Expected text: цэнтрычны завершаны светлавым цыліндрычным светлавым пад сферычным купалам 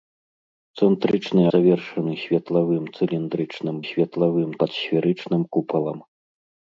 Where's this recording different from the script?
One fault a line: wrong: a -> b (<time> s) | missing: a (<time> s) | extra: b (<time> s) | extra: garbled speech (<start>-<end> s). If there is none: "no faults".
no faults